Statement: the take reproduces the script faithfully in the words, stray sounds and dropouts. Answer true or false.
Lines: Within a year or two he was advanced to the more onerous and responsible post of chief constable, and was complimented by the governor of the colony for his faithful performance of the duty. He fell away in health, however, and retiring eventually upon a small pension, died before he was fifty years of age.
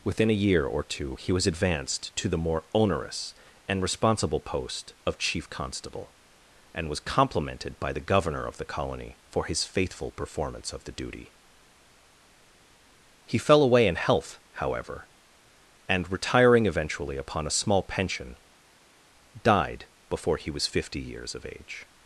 true